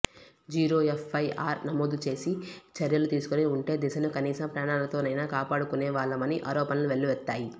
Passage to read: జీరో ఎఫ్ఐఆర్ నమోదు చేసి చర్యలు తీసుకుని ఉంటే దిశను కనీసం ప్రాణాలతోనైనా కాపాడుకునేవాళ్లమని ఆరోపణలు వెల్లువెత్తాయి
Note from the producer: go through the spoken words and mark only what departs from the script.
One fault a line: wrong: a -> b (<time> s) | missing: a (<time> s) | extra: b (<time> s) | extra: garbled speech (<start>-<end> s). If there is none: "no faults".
no faults